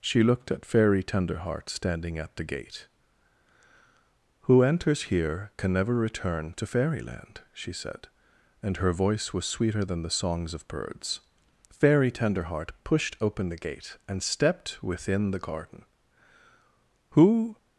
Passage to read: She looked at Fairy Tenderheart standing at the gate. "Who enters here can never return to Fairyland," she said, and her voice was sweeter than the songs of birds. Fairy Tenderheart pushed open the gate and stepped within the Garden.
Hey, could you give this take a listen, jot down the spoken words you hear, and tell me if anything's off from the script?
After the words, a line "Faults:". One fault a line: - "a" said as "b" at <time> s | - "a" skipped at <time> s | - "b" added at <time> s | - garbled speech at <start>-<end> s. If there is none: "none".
She looked at Fairy Tenderheart standing at the gate. "Who enters here can never return to Fairyland," she said, and her voice was sweeter than the songs of birds. Fairy Tenderheart pushed open the gate and stepped within the Garden. "Who
Faults:
- "Who" added at 17.1 s